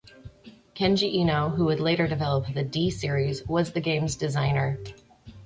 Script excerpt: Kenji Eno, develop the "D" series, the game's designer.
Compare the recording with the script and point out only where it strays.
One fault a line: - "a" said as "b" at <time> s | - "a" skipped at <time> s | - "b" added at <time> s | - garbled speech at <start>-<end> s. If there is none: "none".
- "who would later" added at 1.5 s
- "was" added at 3.5 s